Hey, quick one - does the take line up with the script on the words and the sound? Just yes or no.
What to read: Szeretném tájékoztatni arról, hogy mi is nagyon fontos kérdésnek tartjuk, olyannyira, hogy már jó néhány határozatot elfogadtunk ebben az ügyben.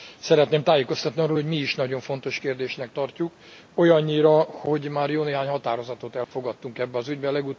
no